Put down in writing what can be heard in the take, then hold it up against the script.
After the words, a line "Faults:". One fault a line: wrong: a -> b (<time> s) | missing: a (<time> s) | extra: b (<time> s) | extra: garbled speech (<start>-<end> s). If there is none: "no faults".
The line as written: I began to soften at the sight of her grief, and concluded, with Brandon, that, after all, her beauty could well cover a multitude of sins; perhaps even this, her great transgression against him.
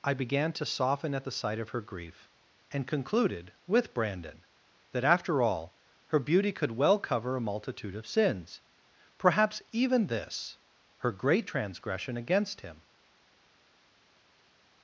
I began to soften at the sight of her grief, and concluded, with Brandon, that, after all, her beauty could well cover a multitude of sins; perhaps even this, her great transgression against him.
Faults:
no faults